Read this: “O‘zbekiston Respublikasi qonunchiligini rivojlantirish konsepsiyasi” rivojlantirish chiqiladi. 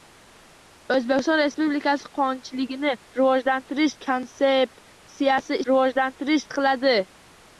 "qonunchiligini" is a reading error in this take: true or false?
false